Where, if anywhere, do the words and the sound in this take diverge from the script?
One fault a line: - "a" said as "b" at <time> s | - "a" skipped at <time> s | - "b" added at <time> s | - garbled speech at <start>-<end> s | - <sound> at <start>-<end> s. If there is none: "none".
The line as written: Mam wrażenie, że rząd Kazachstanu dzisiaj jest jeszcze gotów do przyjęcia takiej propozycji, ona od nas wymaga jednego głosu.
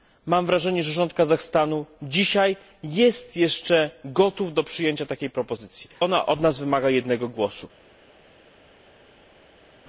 none